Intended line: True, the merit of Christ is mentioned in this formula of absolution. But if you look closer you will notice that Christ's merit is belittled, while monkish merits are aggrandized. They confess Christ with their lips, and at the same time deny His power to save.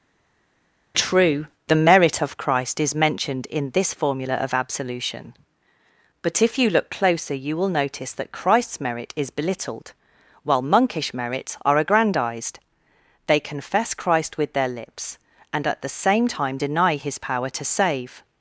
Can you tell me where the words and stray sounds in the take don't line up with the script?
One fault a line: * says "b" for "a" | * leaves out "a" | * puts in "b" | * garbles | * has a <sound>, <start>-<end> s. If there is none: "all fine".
all fine